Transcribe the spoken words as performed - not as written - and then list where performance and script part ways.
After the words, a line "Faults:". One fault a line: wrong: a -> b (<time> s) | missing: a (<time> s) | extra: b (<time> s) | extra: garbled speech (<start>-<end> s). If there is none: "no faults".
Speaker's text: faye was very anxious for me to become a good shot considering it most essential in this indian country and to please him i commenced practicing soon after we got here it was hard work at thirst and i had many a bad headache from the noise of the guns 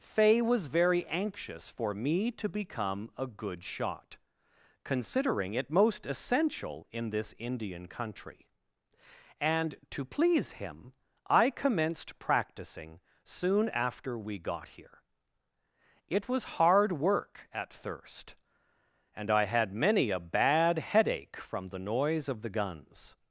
faye was very anxious for me to become a good shot considering it most essential in this indian country and to please him i commenced practicing soon after we got here it was hard work at thirst and i had many a bad headache from the noise of the guns
Faults:
no faults